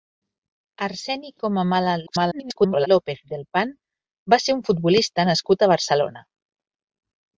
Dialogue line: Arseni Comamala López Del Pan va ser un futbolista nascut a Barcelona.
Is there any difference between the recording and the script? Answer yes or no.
yes